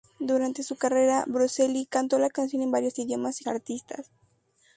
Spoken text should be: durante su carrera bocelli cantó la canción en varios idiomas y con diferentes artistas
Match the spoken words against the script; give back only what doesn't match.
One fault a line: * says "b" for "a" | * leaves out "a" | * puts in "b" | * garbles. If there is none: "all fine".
* leaves out "con diferentes"